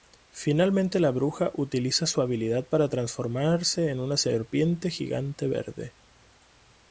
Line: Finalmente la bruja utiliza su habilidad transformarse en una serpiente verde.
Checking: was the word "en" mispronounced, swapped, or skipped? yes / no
no